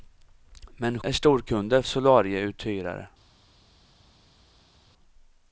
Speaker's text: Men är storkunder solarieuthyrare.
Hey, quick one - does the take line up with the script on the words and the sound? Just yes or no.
yes